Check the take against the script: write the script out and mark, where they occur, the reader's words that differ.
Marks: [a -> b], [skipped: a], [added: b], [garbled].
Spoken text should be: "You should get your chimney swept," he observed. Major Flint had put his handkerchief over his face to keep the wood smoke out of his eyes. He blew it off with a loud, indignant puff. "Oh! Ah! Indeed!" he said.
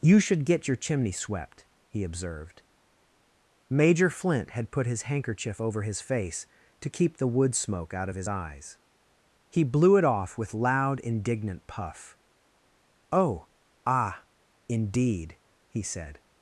"You should get your chimney swept," he observed. Major Flint had put his handkerchief over his face to keep the wood smoke out of his eyes. He blew it off with [skipped: a] loud, indignant puff. "Oh! Ah! Indeed!" he said.